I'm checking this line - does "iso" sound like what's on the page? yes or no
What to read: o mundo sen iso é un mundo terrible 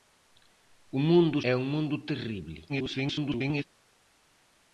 no